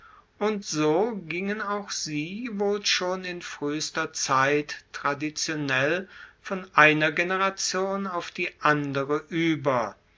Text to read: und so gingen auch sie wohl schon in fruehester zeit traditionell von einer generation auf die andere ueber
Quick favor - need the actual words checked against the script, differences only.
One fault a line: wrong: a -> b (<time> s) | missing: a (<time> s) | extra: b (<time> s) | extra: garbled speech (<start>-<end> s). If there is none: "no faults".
no faults